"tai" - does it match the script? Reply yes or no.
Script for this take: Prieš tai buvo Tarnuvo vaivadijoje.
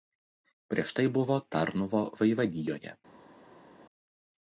yes